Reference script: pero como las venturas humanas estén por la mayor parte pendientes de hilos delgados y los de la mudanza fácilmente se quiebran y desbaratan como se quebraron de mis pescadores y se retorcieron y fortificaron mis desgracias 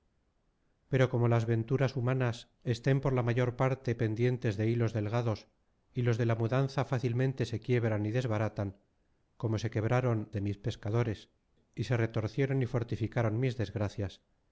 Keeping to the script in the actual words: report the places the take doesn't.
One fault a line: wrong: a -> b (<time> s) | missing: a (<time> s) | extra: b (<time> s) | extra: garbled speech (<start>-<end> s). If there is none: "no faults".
no faults